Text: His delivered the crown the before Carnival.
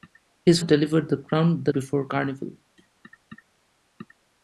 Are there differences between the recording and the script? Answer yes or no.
no